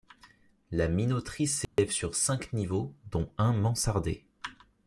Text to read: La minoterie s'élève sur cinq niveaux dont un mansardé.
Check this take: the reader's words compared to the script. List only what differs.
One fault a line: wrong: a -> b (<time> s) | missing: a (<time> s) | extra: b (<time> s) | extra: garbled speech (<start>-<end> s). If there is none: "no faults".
no faults